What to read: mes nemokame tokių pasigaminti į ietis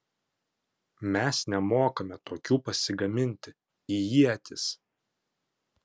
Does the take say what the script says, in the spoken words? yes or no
yes